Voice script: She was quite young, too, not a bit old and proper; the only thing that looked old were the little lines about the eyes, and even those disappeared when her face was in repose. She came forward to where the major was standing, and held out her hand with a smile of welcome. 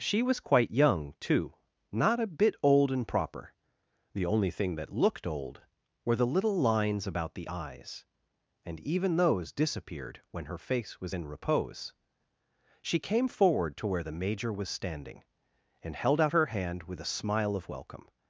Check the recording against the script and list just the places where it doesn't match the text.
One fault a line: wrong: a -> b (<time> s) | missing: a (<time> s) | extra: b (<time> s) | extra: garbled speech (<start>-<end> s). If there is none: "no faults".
no faults